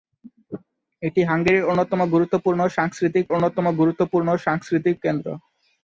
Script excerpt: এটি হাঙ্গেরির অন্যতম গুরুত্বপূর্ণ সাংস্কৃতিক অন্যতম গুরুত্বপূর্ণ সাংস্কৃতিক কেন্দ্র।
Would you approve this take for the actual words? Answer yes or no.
yes